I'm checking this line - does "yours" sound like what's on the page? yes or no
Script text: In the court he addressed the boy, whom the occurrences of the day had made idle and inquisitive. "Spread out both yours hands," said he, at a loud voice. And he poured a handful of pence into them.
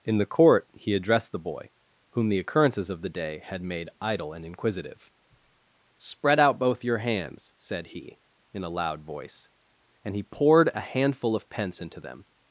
no